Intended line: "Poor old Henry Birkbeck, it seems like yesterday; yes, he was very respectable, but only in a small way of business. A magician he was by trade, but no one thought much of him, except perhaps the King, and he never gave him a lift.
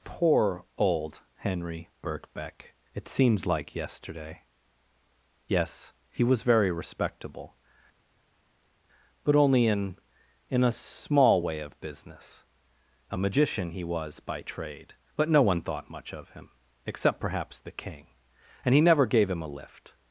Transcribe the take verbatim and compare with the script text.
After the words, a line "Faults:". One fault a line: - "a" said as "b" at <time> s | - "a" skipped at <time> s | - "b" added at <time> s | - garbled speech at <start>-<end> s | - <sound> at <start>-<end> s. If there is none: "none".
"Poor old Henry Birkbeck, it seems like yesterday; yes, he was very respectable, but only in in a small way of business. A magician he was by trade, but no one thought much of him, except perhaps the King, and he never gave him a lift.
Faults:
- "in" added at 10.5 s